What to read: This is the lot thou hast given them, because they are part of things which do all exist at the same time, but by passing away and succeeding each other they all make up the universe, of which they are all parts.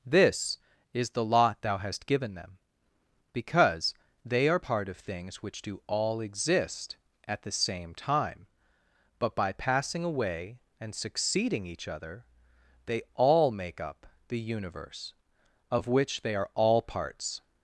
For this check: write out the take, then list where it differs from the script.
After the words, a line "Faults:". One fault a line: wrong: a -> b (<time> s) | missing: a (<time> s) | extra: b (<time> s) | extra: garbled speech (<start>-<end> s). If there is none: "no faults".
This is the lot thou hast given them, because they are part of things which do all exist at the same time, but by passing away and succeeding each other they all make up the universe, of which they are all parts.
Faults:
no faults